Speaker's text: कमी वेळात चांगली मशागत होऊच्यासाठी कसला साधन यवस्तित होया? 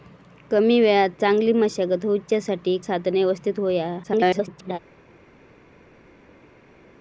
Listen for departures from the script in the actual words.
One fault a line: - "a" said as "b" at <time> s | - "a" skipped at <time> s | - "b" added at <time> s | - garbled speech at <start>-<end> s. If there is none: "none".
- "कसला" skipped at 2.8 s
- garbled speech at 4.0-4.8 s